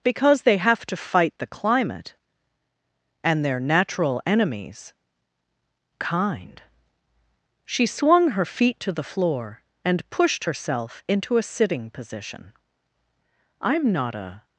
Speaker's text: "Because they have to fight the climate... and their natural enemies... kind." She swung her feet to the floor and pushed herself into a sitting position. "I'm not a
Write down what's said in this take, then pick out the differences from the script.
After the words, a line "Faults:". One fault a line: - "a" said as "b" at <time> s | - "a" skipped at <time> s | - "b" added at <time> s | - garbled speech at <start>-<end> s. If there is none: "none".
"Because they have to fight the climate... and their natural enemies... kind." She swung her feet to the floor and pushed herself into a sitting position. "I'm not a
Faults:
none